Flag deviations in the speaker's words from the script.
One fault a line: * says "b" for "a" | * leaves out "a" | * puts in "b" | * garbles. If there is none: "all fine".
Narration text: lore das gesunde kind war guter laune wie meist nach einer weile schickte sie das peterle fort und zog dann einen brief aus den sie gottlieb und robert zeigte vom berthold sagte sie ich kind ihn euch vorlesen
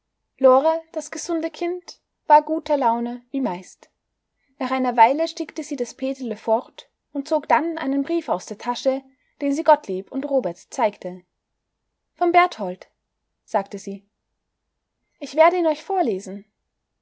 * puts in "der tasche"
* says "werde" for "kind"